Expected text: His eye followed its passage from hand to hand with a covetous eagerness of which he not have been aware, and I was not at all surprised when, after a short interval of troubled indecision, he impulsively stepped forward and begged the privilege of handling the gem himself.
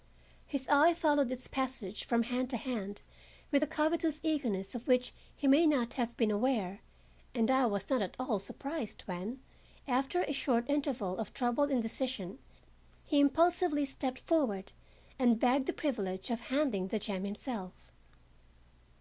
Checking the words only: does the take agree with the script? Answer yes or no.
no